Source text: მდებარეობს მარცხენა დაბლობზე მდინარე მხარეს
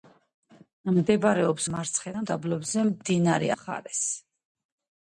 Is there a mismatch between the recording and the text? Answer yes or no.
no